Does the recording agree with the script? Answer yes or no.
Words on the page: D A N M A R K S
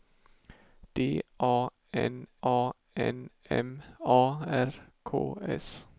no